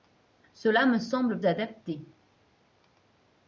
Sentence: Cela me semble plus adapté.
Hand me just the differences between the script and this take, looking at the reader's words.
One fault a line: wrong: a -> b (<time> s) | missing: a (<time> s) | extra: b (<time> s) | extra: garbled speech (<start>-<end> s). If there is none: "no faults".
missing: plus (1.4 s)